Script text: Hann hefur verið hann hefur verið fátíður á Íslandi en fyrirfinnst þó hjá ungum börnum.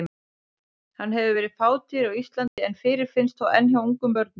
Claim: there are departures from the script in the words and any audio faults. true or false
true